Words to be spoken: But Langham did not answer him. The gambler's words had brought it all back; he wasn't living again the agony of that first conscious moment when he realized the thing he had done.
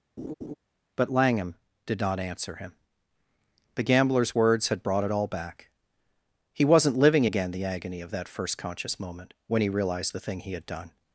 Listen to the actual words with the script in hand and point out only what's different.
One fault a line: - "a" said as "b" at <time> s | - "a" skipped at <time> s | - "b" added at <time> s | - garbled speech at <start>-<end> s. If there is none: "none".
none